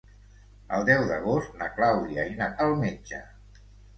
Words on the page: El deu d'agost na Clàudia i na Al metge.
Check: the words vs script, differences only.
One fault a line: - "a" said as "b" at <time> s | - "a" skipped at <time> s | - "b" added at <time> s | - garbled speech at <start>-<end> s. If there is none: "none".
none